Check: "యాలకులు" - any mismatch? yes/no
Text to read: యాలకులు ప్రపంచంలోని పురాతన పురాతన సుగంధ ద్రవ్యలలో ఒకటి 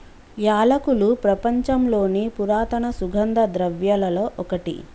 no